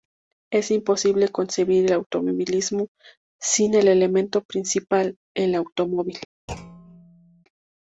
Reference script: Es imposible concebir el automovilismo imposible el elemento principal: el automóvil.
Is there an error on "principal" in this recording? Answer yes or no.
no